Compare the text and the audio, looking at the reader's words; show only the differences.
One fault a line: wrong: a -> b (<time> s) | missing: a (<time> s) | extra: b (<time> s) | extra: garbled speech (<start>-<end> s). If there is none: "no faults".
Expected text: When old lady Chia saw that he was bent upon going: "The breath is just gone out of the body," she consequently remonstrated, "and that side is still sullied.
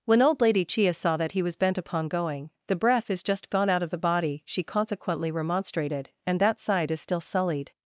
no faults